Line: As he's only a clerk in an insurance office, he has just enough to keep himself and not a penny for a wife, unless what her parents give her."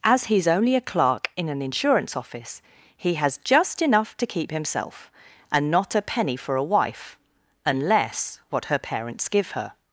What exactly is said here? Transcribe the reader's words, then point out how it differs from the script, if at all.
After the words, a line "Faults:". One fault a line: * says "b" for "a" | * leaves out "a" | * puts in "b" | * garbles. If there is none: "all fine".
As he's only a clerk in an insurance office, he has just enough to keep himself and not a penny for a wife, unless what her parents give her."
Faults:
all fine